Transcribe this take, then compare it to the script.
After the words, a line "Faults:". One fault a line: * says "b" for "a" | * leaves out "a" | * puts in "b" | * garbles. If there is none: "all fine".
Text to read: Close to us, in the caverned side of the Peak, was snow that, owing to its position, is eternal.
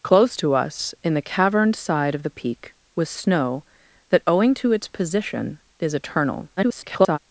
Close to us, in the caverned side of the Peak, was snow that, owing to its position, is eternal. [garbled]
Faults:
* garbles